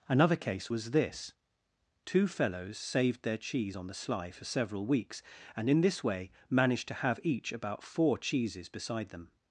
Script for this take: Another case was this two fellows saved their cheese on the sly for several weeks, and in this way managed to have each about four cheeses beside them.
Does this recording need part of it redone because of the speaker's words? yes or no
no